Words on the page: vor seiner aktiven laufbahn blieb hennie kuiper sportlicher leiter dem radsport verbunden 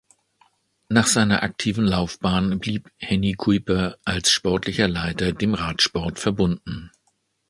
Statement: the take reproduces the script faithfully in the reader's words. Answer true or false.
false